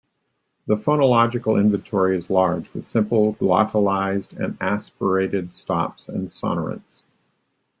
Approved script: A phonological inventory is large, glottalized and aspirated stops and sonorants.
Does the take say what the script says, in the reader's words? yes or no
no